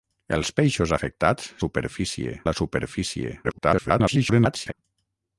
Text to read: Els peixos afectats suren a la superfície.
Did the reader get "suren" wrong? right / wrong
wrong